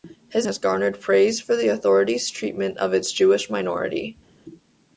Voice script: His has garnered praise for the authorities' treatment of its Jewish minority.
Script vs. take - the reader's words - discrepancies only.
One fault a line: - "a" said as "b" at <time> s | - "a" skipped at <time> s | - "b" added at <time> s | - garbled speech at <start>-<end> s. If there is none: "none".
none